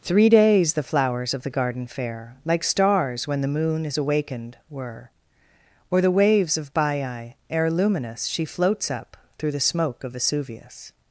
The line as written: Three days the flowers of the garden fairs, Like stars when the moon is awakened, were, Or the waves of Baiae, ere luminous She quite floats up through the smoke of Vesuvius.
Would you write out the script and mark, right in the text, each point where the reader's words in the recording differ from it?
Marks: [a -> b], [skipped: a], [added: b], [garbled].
Three days the flowers of the garden [fairs, -> fair] Like stars when the moon is awakened, were, Or the waves of Baiae, ere luminous She [skipped: quite] floats up through the smoke of Vesuvius.